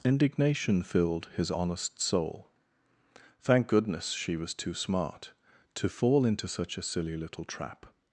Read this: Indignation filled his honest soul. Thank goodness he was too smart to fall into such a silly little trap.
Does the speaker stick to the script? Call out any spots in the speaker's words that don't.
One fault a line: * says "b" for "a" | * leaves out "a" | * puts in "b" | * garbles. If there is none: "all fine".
* says "she" for "he"